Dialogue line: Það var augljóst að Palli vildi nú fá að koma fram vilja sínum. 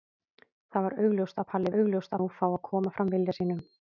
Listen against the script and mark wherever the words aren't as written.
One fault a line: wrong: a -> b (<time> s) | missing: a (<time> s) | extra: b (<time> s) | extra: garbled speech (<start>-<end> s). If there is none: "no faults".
wrong: vildi -> augljóst (1.8 s)